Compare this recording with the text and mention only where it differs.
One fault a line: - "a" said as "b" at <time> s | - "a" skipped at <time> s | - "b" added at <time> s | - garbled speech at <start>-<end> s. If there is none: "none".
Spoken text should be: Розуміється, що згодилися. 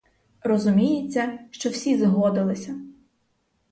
- "всі" added at 1.7 s